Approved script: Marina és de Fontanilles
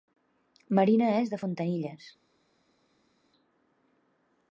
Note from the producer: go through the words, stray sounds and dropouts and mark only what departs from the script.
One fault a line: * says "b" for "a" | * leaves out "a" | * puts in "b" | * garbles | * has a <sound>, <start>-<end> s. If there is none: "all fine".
all fine